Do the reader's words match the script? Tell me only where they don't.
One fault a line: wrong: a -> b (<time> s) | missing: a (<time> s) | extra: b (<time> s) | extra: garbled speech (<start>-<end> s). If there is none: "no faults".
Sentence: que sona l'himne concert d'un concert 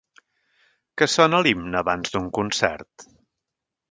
wrong: concert -> abans (1.8 s)